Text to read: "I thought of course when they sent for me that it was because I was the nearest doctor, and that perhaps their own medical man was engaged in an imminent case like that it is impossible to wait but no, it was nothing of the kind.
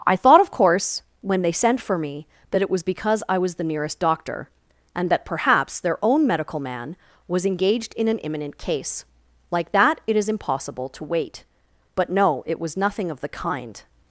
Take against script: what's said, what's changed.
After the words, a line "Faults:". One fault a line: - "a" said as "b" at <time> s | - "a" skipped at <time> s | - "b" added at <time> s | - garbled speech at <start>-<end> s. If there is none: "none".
"I thought of course when they sent for me that it was because I was the nearest doctor, and that perhaps their own medical man was engaged in an imminent case like that it is impossible to wait but no, it was nothing of the kind.
Faults:
none